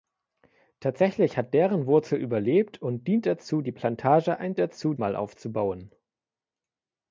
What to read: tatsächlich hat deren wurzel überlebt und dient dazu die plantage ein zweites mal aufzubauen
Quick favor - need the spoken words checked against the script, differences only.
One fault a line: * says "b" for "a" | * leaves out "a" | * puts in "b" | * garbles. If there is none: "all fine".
* says "dazu" for "zweites"